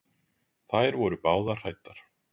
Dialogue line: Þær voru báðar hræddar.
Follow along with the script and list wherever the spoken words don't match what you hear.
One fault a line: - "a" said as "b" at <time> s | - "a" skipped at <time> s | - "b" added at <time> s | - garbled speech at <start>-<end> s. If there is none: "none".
none